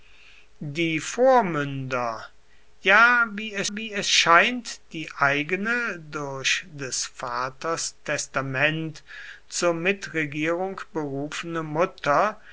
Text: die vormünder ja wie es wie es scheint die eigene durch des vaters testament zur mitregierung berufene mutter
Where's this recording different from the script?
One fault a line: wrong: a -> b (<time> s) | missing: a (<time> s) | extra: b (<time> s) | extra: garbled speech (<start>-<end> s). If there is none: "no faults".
no faults